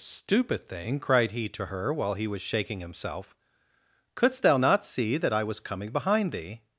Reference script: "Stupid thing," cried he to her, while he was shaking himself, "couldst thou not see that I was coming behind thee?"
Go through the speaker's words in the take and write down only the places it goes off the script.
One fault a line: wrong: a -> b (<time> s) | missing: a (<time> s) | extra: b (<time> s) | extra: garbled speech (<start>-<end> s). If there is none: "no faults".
no faults